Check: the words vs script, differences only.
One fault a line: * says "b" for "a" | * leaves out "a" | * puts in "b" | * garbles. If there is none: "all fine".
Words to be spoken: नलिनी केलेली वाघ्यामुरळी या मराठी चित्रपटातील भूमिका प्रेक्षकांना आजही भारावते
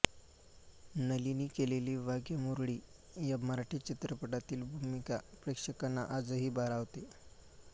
all fine